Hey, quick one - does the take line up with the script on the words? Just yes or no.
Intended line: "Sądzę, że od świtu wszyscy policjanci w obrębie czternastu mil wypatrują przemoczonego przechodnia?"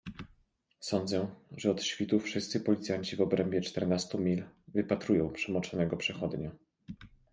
yes